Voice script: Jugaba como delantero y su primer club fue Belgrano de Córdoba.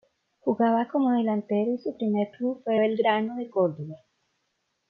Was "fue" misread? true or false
false